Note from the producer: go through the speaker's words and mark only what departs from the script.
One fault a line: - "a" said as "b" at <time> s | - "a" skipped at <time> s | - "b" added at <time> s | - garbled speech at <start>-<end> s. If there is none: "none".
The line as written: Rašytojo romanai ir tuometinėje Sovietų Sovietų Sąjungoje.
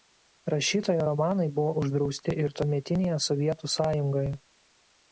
- "buvo uždrausti" added at 1.6 s
- "Sovietų" skipped at 3.8 s